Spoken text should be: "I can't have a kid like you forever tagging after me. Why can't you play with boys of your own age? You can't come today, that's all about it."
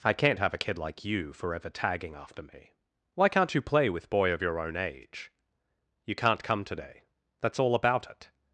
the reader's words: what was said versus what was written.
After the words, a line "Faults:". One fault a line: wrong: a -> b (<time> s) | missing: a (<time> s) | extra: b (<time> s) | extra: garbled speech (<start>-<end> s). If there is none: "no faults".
"I can't have a kid like you forever tagging after me. Why can't you play with boy of your own age? You can't come today, that's all about it."
Faults:
wrong: boys -> boy (4.1 s)